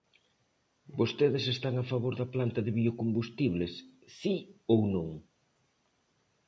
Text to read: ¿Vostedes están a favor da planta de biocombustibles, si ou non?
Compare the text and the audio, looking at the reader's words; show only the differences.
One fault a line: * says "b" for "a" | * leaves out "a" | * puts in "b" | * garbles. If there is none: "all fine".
all fine